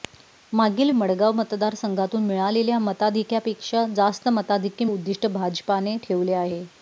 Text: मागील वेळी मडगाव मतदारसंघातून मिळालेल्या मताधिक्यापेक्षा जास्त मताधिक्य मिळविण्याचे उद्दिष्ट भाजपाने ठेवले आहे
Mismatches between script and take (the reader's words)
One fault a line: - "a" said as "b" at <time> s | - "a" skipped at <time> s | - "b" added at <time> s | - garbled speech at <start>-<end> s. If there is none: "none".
- "वेळी" skipped at 0.9 s
- "मिळविण्याचे" skipped at 4.9 s